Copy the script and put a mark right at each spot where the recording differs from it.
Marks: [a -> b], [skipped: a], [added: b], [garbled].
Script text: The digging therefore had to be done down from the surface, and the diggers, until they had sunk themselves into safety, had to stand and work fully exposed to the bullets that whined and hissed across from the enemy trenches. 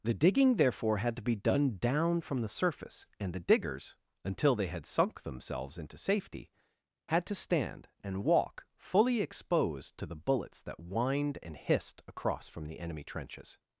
The digging therefore had to be done down from the surface, and the diggers, until they had sunk themselves into safety, had to stand and [work -> walk] fully exposed to the bullets that whined and hissed across from the enemy trenches.